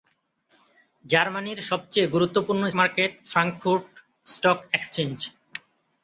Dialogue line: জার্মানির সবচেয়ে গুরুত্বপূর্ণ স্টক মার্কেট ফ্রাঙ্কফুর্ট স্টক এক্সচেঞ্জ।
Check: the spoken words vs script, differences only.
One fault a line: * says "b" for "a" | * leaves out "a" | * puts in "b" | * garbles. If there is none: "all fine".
* leaves out "স্টক"